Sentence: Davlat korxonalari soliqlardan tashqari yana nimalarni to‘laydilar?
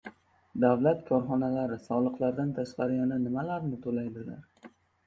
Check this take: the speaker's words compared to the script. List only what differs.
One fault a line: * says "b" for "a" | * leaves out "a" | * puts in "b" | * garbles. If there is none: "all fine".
all fine